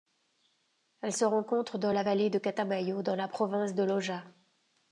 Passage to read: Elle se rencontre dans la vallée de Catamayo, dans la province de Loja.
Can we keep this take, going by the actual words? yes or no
yes